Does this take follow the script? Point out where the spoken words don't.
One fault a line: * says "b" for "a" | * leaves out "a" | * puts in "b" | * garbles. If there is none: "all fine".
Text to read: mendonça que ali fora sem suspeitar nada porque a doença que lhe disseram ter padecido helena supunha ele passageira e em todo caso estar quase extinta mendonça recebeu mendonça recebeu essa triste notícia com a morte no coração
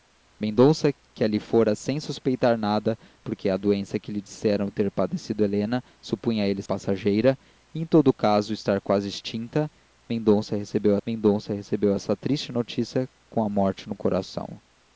all fine